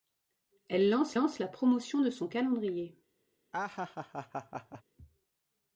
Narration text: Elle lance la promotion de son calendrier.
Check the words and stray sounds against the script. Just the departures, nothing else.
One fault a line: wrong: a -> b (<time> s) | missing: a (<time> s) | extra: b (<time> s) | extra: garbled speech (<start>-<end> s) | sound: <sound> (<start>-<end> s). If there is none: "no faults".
extra: lance (1.1 s)
sound: laugh (3.5-4.8 s)